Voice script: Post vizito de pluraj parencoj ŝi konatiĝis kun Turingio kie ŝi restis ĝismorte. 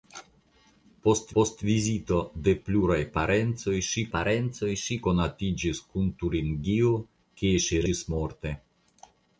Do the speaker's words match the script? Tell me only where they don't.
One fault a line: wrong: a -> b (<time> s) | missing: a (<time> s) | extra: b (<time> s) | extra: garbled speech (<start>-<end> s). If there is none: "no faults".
extra: post (1.4 s)
extra: parencoj ŝi (4.2 s)
missing: restis (7.9 s)